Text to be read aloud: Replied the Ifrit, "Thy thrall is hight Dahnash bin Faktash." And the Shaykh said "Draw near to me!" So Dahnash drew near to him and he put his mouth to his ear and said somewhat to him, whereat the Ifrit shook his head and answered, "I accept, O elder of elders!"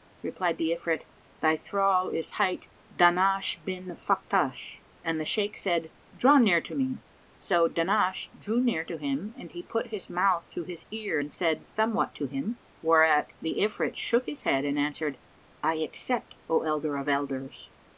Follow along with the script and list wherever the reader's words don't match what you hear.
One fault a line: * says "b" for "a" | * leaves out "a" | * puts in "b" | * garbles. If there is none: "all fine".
all fine